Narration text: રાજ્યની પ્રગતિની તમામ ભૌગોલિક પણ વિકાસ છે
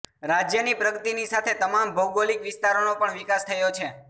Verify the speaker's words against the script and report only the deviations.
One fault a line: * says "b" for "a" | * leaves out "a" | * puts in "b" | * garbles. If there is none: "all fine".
* puts in "સાથે"
* puts in "વિસ્તારોનો"
* puts in "થયો"